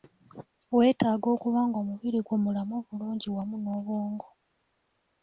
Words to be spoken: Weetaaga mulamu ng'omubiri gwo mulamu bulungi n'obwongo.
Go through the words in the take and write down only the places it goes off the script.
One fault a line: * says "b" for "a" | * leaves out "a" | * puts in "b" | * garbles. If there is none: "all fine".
* says "okuba" for "mulamu"
* puts in "wamu"